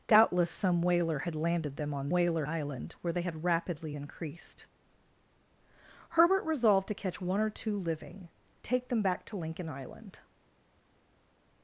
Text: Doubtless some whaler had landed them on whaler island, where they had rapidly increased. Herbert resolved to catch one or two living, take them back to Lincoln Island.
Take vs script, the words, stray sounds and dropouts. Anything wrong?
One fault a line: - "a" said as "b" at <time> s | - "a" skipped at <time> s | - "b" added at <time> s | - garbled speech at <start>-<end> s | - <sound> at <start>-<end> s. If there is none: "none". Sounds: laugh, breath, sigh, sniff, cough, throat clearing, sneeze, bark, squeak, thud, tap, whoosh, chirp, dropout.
none